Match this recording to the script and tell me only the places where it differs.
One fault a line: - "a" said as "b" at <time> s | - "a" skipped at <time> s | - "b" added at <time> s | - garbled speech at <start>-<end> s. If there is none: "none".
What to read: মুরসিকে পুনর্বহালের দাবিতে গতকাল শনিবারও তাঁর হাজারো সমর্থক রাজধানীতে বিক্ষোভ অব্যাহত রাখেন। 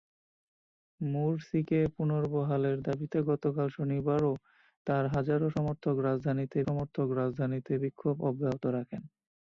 - "সমর্থক রাজধানীতে" added at 6.7 s